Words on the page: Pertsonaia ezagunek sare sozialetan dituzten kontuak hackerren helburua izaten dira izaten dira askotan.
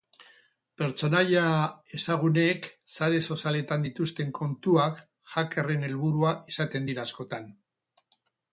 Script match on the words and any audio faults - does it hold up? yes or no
no